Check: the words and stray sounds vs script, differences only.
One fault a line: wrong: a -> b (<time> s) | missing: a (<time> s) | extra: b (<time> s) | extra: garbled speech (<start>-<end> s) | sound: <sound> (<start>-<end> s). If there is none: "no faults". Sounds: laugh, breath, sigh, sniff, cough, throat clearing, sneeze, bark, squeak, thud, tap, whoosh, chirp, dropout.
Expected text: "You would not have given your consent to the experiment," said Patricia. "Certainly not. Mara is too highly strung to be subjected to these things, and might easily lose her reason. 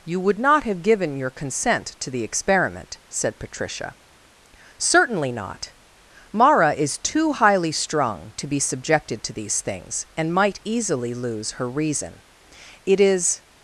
extra: It is (12.9 s)